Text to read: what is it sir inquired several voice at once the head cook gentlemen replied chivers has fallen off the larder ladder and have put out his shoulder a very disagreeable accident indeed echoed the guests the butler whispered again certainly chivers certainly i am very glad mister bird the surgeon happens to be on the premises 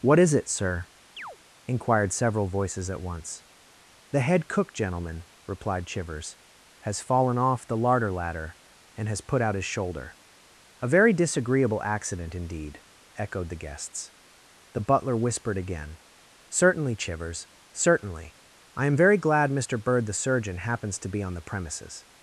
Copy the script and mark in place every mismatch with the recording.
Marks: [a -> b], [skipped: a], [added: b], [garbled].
what is it sir inquired several [voice -> voices] at once the head cook gentlemen replied chivers has fallen off the larder ladder and [have -> has] put out his shoulder a very disagreeable accident indeed echoed the guests the butler whispered again certainly chivers certainly i am very glad mister bird the surgeon happens to be on the premises